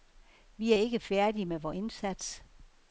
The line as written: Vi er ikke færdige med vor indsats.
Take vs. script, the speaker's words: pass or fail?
pass